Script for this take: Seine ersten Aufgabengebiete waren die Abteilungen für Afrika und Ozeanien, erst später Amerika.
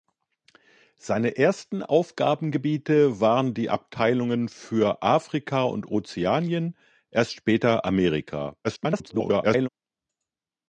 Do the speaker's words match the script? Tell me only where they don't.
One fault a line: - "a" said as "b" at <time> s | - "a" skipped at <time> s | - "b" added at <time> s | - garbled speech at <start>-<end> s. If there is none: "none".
- garbled speech at 8.6-9.7 s